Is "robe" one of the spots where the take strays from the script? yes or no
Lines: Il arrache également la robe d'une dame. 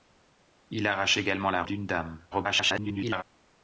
yes